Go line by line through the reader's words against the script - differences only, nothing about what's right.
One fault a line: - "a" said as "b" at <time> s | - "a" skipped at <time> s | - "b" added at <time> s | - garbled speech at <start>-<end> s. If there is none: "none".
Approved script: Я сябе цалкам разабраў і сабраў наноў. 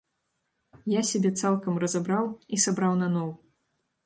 none